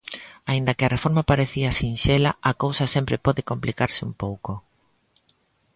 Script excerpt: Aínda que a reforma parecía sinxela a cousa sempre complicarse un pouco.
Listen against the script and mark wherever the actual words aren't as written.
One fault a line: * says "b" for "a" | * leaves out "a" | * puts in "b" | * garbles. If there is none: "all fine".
* puts in "pode"